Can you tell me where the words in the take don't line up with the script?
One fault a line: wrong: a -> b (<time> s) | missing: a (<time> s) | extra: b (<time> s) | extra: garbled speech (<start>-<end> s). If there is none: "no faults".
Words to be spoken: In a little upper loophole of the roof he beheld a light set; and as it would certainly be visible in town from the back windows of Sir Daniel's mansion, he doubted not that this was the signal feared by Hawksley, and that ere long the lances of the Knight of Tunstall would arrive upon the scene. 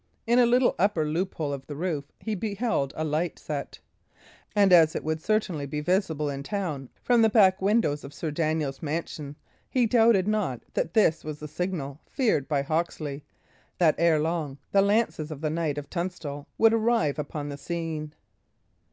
missing: and (13.2 s)